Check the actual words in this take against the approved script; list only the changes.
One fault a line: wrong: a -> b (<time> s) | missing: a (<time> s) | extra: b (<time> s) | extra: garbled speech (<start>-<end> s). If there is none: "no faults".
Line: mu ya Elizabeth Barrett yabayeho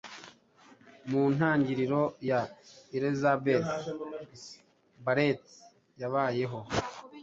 extra: ntangiriro (1.4 s)